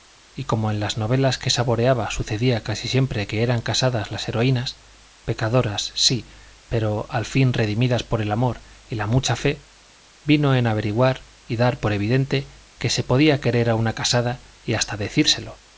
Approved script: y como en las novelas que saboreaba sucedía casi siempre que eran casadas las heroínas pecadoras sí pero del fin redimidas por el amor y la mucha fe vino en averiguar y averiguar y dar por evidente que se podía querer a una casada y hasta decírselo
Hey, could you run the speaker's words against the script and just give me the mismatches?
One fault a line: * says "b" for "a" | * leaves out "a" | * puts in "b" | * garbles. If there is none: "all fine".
* says "al" for "del"
* leaves out "averiguar y"